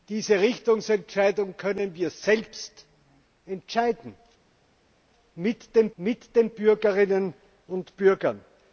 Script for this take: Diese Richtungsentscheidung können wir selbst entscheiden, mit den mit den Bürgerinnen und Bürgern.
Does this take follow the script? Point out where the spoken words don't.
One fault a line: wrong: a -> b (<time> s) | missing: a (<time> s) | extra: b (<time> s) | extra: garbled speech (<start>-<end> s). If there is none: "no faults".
no faults